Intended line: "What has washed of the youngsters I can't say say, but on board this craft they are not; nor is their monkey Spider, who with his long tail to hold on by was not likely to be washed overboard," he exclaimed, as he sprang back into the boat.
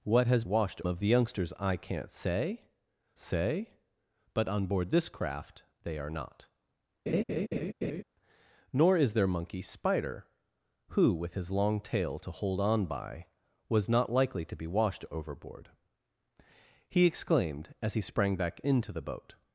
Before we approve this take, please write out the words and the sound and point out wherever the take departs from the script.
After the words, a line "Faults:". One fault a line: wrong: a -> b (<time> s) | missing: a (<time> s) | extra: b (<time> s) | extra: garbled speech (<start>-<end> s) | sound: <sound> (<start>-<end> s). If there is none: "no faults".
"What has washed of the youngsters I can't say say, but on board this craft they are not; nor is their monkey Spider, who with his long tail to hold on by was not likely to be washed overboard," he exclaimed, as he sprang back into the boat.
Faults:
sound: laugh (7.1-8.0 s)